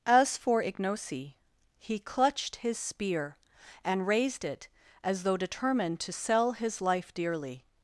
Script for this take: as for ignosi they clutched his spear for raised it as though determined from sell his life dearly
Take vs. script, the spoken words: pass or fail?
fail